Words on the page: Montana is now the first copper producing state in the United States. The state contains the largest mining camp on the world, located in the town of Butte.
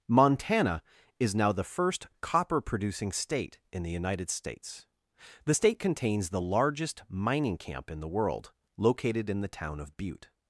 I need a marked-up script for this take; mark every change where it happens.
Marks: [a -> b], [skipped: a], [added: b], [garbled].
Montana is now the first copper producing state in the United States. The state contains the largest mining camp [on -> in] the world, located in the town of Butte.